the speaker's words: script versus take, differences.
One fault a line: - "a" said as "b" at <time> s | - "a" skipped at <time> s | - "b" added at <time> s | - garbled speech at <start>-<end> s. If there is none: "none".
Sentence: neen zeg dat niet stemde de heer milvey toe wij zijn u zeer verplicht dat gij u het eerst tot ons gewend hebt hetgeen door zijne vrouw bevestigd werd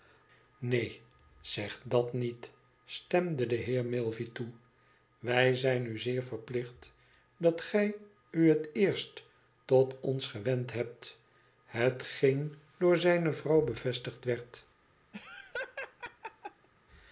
none